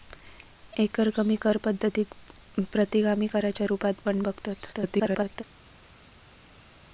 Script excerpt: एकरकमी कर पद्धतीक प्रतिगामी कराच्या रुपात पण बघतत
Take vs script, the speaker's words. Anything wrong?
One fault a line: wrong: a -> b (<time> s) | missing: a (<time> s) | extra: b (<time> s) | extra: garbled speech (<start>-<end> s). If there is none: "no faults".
extra: garbled speech (4.7-5.4 s)